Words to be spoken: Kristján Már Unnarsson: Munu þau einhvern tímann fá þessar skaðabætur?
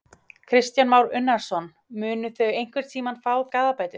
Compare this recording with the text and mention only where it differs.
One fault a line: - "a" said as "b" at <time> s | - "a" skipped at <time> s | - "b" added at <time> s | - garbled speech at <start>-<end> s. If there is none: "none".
- "þessar" skipped at 3.3 s